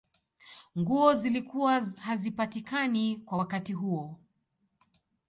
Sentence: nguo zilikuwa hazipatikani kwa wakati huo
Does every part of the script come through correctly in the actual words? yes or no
yes